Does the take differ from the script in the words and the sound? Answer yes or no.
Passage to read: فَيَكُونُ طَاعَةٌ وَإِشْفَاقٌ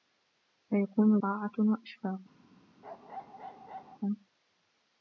yes